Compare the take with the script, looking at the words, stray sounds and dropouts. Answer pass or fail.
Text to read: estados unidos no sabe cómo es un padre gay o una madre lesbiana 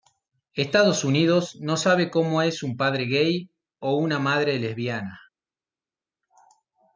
pass